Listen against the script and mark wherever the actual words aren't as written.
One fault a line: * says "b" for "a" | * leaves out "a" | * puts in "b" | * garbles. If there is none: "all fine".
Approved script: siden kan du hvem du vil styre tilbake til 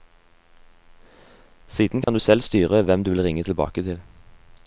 * puts in "selv styre"
* says "ringe" for "styre"